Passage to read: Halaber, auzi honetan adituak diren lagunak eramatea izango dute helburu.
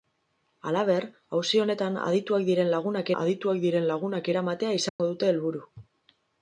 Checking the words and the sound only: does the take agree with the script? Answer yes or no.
no